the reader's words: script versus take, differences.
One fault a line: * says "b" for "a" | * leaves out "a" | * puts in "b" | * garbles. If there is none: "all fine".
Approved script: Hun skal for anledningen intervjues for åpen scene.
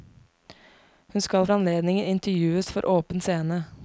* leaves out "for"